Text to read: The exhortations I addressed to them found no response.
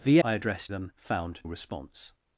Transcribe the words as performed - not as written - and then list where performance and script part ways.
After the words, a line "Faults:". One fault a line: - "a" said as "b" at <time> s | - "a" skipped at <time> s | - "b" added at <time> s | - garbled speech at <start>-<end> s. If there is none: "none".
The I addressed them found response.
Faults:
- "exhortations" skipped at 0.2 s
- "to" skipped at 0.7 s
- "no" skipped at 1.4 s